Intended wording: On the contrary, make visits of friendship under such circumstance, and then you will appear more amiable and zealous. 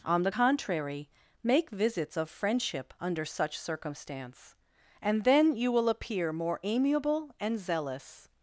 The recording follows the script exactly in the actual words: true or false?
true